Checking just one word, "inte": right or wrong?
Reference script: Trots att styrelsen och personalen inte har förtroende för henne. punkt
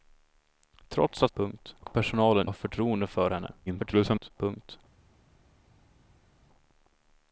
wrong